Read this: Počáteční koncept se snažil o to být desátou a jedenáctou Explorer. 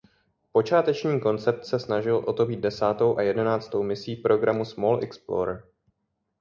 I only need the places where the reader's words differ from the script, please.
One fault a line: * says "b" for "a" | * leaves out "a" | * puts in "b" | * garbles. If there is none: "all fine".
* puts in "misí programu Small"